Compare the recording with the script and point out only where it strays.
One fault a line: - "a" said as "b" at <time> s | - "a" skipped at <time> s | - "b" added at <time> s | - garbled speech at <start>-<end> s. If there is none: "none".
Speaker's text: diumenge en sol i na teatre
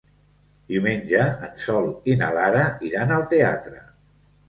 - "lara iran al" added at 2.4 s